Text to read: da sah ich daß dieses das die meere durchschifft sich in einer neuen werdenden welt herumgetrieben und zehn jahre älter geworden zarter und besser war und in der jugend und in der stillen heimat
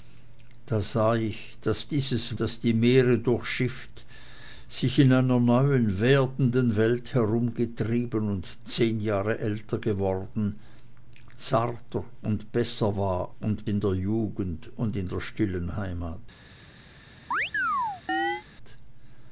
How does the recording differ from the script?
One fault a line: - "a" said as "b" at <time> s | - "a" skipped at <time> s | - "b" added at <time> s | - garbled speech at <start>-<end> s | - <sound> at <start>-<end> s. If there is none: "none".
- chirp at 17.3-18.4 s